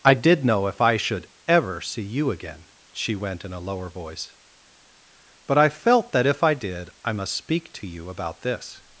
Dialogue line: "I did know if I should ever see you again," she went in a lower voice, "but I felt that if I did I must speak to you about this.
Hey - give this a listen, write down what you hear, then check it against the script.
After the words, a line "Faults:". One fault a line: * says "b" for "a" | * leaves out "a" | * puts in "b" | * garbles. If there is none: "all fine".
"I did know if I should ever see you again," she went in a lower voice, "but I felt that if I did I must speak to you about this.
Faults:
all fine